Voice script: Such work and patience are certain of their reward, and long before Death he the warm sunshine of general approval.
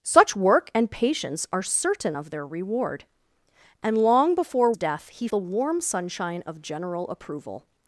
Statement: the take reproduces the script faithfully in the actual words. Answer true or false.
true